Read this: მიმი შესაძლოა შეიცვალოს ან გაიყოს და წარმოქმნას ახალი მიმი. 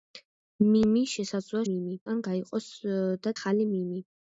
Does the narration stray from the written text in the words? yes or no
yes